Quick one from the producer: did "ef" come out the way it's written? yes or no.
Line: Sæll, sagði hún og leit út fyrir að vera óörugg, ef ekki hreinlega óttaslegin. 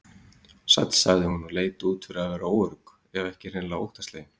yes